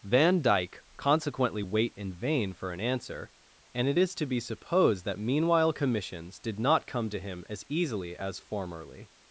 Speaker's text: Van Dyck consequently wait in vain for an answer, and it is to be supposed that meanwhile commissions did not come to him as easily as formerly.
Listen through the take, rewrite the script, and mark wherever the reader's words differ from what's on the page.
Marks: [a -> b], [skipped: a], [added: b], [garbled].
Van Dyck consequently wait in vain for an answer, and it is to be supposed that meanwhile commissions did not come to him as easily as formerly.